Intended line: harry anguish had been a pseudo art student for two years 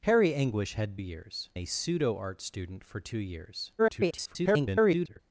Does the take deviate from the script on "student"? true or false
false